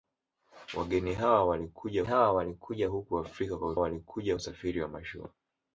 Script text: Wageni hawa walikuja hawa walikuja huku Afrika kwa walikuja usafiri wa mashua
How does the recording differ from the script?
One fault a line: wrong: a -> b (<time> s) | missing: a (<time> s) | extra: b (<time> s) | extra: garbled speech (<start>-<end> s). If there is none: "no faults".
no faults